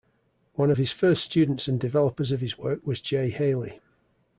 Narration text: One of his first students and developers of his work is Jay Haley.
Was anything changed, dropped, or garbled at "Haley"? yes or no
no